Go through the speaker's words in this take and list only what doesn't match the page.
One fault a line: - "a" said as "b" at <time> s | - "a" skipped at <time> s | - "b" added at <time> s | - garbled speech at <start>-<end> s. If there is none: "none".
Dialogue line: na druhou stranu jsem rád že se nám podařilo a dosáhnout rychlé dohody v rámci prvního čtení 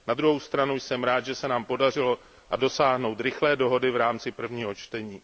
none